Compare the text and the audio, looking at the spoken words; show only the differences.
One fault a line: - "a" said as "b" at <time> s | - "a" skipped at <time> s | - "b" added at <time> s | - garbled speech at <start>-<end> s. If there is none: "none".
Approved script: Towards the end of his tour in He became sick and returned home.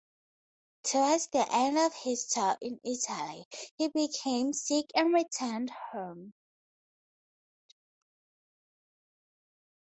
- "Italy" added at 2.9 s